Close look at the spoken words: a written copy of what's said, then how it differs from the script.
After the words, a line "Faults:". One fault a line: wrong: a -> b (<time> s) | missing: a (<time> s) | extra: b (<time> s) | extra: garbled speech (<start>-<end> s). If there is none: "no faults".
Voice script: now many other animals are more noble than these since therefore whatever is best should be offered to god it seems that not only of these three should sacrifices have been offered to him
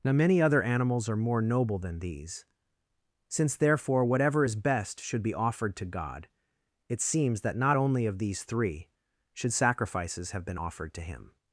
now many other animals are more noble than these since therefore whatever is best should be offered to god it seems that not only of these three should sacrifices have been offered to him
Faults:
no faults